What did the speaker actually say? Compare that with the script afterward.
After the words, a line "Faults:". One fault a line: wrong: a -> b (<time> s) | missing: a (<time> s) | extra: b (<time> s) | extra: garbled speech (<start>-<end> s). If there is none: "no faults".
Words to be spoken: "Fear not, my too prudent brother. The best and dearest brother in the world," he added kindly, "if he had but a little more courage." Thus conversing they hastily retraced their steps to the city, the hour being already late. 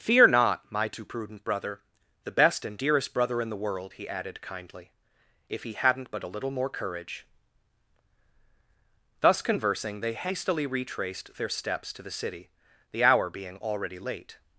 "Fear not, my too prudent brother. The best and dearest brother in the world," he added kindly, "if he hadn't but a little more courage." Thus conversing they hastily retraced their steps to the city, the hour being already late.
Faults:
wrong: had -> hadn't (5.7 s)